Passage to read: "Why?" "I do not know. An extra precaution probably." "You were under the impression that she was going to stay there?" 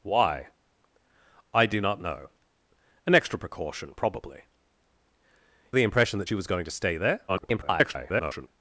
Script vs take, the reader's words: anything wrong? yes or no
yes